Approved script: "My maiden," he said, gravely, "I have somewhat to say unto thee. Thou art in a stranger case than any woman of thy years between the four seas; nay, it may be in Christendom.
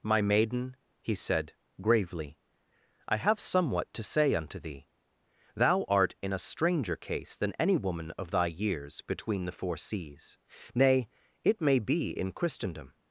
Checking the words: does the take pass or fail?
pass